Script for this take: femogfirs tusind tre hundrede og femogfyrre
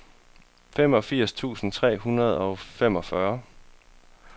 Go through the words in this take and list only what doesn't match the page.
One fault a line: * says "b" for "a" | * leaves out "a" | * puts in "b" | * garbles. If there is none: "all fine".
all fine